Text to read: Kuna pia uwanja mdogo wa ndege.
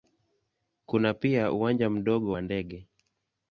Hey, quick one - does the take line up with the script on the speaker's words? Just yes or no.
yes